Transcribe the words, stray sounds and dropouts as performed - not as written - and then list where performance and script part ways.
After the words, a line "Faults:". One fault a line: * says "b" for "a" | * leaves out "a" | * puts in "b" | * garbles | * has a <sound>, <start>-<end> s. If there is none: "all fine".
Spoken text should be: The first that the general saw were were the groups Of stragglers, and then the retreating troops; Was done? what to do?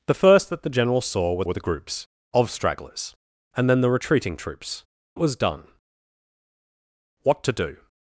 The first that the general saw were were the groups Of stragglers, and then the retreating troops; Was done? what to do?
Faults:
all fine